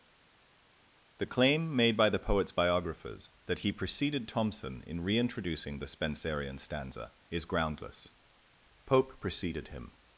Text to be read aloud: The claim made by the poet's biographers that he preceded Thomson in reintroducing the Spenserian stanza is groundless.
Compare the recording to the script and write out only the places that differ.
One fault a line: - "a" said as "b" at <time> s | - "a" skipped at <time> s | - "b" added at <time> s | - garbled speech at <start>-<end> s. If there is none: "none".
- "Pope preceded him" added at 8.9 s